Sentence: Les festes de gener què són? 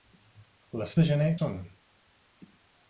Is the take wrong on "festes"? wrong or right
wrong